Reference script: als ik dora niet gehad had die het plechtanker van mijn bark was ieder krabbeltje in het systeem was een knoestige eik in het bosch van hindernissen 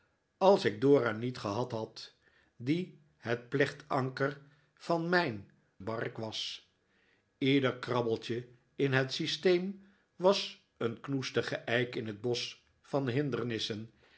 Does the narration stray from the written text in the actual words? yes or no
no